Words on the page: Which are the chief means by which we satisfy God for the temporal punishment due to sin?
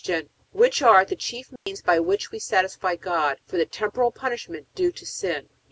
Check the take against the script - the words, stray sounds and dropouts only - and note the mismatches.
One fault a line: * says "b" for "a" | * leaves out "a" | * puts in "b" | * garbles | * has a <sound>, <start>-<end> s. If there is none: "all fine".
* has a dropout, 1.6-1.7 s